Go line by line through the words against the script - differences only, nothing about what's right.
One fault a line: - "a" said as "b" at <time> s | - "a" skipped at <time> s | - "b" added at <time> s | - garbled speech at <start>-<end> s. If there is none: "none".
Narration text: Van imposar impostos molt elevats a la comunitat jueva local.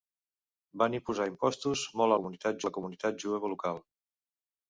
- "elevats" said as "comunitat" at 2.2 s